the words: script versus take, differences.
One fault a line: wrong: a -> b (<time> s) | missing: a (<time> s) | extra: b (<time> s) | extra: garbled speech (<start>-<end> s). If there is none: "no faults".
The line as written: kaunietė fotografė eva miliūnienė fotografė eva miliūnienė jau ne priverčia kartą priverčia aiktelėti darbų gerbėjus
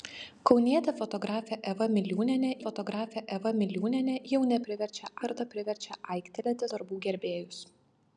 no faults